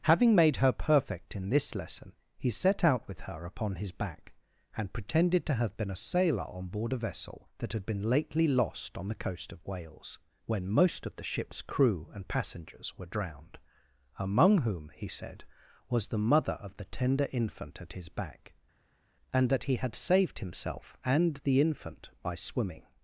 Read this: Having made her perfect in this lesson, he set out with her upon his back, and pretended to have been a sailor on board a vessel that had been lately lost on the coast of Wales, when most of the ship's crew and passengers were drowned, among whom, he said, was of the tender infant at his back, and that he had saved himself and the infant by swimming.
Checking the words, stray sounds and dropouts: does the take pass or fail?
fail